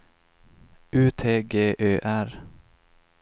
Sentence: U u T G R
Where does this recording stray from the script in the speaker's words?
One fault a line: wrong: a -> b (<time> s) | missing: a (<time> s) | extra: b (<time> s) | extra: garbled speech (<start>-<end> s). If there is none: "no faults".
missing: u (1.1 s)
extra: Ö (1.8 s)